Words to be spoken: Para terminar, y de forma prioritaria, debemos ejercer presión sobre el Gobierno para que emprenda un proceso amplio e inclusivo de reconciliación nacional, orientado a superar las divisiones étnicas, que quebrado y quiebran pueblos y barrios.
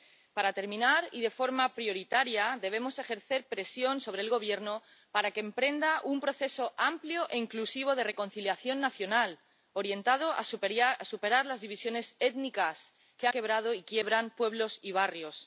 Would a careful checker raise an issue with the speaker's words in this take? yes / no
no